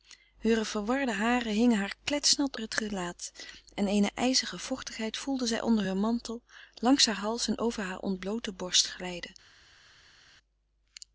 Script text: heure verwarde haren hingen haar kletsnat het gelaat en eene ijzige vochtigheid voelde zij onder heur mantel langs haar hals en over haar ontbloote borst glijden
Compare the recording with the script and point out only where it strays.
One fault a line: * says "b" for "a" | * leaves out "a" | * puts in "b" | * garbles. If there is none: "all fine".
all fine